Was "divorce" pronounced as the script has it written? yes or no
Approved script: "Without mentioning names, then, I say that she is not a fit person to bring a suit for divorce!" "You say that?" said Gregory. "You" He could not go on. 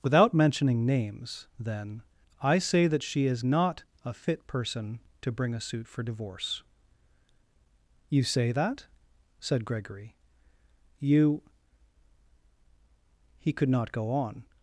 yes